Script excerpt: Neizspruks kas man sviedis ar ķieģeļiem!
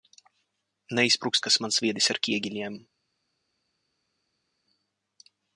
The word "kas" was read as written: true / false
true